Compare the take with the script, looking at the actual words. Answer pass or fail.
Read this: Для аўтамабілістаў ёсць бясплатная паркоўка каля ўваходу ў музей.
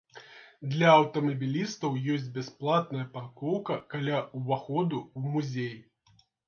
pass